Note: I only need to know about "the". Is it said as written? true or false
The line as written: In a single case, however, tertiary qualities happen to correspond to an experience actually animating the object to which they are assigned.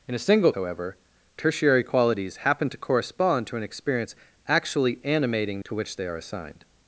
false